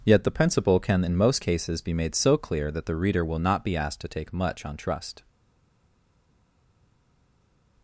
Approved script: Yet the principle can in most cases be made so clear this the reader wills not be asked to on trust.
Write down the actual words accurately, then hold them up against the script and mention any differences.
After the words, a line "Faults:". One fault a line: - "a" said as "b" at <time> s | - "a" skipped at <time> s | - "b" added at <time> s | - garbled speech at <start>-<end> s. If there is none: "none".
Yet the principle can in most cases be made so clear that the reader will not be asked to take much on trust.
Faults:
- "this" said as "that" at 2.7 s
- "wills" said as "will" at 3.2 s
- "take much" added at 4.1 s